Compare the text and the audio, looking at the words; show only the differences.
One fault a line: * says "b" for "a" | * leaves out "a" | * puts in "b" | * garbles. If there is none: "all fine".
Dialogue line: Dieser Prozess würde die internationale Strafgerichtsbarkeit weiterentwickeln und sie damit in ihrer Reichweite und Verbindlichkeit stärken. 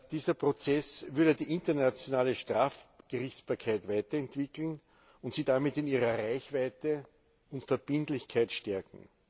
all fine